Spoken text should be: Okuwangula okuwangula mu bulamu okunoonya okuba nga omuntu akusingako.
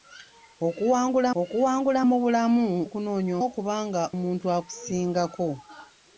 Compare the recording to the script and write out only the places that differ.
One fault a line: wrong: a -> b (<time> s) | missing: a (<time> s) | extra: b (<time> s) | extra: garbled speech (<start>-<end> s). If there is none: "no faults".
no faults